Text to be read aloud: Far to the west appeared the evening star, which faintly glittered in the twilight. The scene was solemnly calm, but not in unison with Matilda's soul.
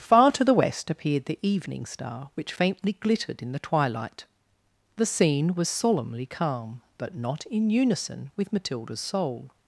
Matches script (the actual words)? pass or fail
pass